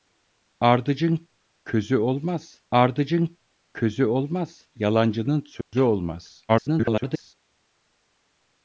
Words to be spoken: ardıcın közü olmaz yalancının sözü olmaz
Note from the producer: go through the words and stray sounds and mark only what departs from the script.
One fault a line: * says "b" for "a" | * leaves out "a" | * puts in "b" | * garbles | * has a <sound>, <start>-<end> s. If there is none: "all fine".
* puts in "ardıcın közü olmaz"
* has a dropout, 5.6-5.7 s
* garbles